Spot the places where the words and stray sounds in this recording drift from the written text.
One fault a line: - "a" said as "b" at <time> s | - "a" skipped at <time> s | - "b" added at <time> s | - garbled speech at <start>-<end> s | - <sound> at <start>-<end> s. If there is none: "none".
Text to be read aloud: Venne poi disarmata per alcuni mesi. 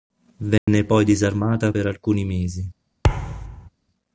- dropout at 0.6-0.7 s
- thud at 3.0-3.7 s